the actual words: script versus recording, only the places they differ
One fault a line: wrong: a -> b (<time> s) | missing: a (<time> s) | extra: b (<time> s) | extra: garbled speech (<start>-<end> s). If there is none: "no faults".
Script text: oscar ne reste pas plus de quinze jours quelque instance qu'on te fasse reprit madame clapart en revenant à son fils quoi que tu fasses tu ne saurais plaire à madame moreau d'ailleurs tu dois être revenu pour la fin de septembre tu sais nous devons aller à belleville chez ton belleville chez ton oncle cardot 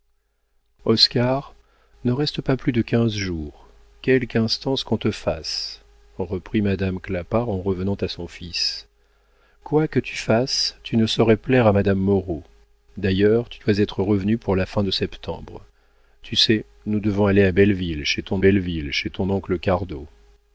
no faults